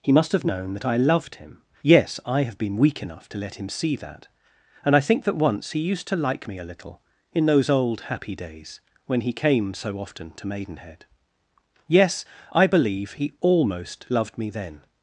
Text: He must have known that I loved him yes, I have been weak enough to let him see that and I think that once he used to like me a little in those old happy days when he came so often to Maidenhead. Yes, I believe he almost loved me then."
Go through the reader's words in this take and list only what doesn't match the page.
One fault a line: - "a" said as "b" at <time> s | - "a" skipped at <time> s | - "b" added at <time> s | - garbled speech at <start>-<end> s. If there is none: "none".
none